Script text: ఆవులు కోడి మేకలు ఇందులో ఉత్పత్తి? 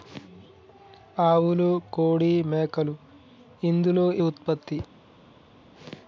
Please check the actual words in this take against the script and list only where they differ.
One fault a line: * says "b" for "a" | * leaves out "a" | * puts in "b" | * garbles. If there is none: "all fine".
all fine